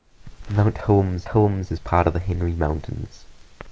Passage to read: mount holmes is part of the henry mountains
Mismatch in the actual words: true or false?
true